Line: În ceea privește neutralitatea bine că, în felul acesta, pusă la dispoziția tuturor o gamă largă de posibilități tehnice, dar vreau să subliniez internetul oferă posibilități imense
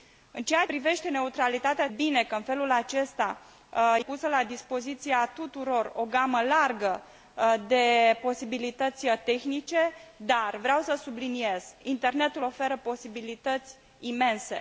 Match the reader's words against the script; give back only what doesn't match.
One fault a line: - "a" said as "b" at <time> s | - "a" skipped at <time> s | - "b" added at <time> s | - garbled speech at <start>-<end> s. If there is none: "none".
none